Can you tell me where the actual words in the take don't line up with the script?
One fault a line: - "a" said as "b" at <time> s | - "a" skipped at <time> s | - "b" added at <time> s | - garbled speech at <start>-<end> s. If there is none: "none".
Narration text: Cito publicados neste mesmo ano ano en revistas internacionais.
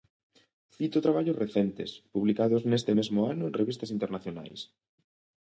- "traballos recentes" added at 1.1 s
- "ano" skipped at 3.4 s